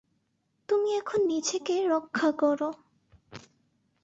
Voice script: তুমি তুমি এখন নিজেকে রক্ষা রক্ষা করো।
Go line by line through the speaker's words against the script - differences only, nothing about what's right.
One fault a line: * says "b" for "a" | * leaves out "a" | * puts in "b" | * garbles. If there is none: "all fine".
* leaves out "তুমি"
* leaves out "রক্ষা"